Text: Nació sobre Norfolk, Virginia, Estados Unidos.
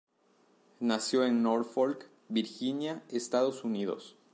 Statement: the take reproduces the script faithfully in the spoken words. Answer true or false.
false